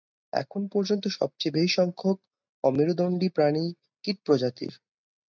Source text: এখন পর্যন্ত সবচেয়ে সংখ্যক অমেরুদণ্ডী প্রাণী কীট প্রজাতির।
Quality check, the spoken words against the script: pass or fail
fail